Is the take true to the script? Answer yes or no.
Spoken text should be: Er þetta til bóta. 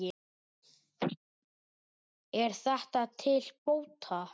yes